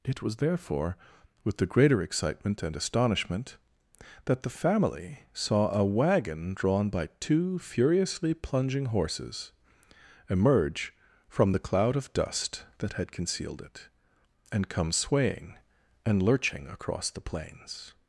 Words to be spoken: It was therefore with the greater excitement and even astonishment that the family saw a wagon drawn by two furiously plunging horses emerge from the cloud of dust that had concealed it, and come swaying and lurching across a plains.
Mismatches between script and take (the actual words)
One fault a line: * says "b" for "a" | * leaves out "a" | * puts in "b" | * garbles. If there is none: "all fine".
* leaves out "even"
* says "the" for "a"